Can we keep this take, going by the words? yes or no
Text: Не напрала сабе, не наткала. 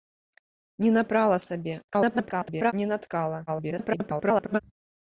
no